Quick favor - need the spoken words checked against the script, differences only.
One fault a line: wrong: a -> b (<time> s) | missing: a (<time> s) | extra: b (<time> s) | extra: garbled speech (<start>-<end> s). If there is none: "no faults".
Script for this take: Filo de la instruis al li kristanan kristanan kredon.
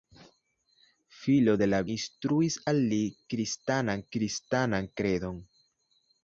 no faults